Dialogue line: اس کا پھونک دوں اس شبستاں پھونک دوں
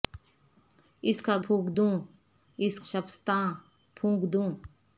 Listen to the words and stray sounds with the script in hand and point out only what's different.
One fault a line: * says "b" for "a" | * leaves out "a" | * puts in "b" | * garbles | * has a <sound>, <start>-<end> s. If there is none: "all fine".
all fine